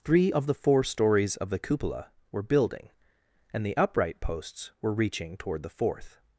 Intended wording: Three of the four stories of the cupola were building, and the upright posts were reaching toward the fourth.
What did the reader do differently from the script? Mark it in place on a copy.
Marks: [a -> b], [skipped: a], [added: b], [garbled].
Three of the four stories of the cupola were building, and the upright posts were reaching toward the fourth.